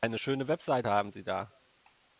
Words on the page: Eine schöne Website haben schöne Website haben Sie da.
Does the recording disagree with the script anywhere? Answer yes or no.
yes